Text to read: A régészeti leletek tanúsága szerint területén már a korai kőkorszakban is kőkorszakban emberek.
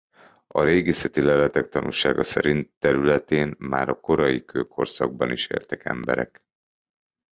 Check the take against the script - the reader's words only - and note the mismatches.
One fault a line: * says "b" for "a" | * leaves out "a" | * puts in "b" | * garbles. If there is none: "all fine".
* says "éltek" for "kőkorszakban"